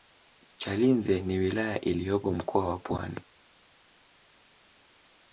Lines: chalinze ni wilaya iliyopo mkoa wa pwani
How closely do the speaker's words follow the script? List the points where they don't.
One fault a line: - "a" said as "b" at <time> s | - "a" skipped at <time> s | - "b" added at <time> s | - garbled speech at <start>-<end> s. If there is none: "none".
none